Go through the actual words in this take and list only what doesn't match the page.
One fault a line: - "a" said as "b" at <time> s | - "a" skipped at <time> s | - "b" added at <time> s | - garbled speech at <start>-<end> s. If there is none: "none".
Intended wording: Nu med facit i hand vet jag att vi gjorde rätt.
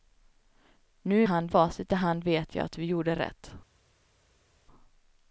- "med" said as "hand" at 1.2 s